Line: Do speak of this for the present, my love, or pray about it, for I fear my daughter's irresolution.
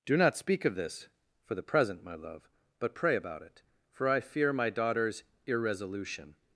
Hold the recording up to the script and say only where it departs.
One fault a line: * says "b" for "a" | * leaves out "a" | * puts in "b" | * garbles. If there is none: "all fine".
* puts in "not"
* says "but" for "or"